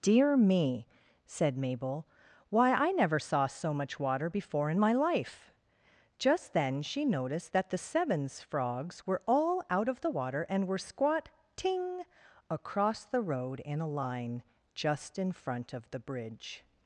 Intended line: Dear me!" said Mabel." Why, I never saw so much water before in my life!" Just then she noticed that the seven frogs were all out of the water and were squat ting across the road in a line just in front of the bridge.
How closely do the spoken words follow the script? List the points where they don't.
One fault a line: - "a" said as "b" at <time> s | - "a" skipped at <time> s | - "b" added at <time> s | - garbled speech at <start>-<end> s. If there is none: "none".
- "seven" said as "sevens" at 7.8 s